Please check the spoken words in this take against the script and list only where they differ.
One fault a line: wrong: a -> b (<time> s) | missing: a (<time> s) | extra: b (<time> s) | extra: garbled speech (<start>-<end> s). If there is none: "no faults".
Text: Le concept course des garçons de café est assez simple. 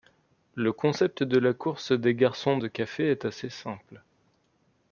extra: de la (1.2 s)